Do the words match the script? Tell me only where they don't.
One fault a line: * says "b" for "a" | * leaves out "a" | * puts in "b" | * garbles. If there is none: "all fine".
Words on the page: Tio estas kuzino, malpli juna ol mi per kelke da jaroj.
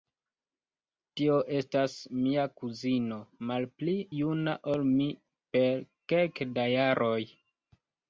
* puts in "mia"